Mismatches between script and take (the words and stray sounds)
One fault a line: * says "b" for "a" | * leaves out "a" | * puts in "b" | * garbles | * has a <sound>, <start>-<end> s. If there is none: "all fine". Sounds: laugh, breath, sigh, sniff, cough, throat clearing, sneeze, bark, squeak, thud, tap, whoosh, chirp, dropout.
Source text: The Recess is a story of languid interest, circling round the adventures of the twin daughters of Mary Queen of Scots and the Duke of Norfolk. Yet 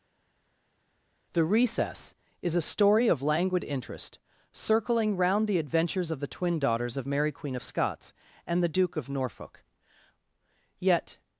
all fine